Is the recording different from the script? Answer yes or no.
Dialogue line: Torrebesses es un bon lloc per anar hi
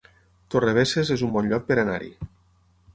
no